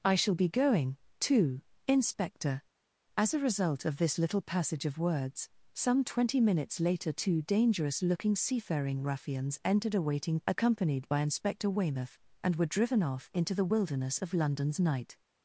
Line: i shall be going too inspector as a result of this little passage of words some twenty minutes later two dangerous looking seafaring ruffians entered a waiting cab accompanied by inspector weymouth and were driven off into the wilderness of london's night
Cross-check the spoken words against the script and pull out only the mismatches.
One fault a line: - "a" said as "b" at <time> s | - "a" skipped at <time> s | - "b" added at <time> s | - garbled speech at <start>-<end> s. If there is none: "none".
- "cab" skipped at 10.4 s